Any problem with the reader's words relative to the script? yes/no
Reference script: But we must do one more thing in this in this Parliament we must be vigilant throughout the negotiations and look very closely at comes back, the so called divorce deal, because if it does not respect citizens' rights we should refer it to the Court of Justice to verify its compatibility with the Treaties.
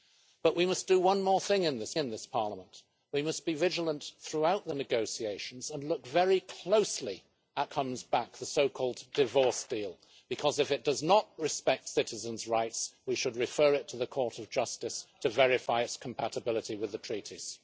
no